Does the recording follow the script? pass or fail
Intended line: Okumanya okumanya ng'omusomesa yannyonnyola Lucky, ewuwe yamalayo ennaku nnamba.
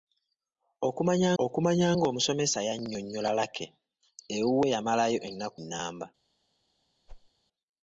pass